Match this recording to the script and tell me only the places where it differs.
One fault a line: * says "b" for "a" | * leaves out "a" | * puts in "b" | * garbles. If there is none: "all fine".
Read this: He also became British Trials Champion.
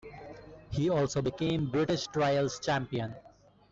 all fine